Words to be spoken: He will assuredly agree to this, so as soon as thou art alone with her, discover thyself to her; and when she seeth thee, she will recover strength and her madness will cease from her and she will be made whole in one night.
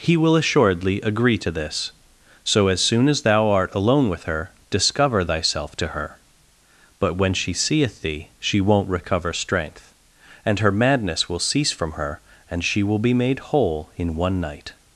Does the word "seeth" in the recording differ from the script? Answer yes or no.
no